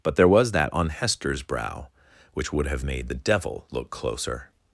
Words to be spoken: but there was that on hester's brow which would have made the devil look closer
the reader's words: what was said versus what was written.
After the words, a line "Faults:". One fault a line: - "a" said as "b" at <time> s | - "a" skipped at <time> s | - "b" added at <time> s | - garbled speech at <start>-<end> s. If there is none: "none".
but there was that on hester's brow which would have made the devil look closer
Faults:
none